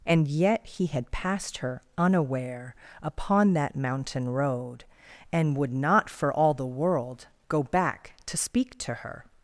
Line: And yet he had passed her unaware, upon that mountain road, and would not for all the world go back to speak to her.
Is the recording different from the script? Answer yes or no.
no